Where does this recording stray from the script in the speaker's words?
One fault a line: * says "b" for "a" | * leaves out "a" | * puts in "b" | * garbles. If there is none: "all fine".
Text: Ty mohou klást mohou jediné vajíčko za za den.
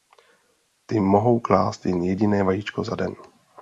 * says "jen" for "mohou"
* leaves out "za"